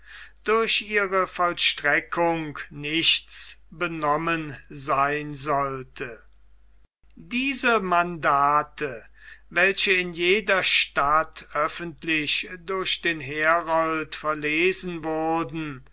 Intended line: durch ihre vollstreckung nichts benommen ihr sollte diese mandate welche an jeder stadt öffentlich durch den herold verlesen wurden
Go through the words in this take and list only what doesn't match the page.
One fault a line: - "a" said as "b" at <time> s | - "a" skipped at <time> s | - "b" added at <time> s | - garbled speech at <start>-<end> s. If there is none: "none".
- "ihr" said as "sein" at 4.7 s
- "an" said as "in" at 9.9 s